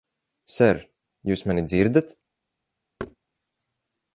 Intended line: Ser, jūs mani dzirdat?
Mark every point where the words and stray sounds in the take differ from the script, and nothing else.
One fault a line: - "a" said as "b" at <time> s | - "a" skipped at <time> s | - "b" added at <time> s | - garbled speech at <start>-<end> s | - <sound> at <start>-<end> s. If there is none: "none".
- thud at 3.0-3.2 s